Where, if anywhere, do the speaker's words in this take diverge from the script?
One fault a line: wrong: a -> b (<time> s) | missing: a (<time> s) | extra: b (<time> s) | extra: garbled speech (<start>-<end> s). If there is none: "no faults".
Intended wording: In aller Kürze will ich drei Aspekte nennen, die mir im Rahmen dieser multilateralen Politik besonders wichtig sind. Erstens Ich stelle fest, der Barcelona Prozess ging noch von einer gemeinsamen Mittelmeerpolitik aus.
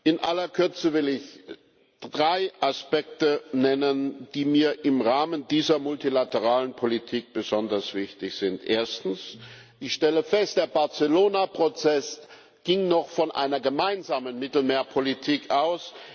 no faults